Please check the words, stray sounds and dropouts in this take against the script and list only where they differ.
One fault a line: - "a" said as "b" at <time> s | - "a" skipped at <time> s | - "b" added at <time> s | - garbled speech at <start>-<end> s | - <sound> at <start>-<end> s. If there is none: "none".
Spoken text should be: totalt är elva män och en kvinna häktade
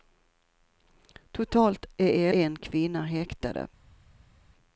- "elva män och" skipped at 2.3 s